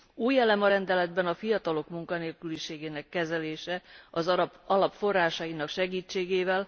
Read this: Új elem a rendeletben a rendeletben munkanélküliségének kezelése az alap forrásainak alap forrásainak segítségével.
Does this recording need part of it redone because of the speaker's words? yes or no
yes